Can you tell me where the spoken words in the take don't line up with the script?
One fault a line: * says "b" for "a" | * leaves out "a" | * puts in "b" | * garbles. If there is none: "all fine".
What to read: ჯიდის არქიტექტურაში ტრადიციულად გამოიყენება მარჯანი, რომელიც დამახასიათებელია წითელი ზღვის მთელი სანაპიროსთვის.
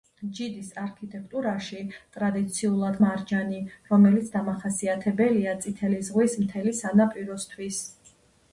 * leaves out "გამოიყენება"